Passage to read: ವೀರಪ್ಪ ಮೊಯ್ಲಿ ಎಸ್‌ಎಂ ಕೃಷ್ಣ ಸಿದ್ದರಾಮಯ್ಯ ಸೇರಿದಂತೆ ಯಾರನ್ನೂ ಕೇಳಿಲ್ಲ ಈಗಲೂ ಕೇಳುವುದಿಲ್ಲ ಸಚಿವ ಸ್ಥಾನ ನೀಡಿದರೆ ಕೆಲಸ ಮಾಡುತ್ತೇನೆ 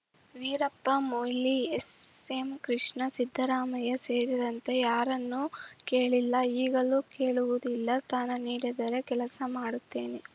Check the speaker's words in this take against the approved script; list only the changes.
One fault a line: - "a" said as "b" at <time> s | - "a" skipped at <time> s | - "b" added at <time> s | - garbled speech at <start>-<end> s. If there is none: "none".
- "ಸಚಿವ" skipped at 8.0 s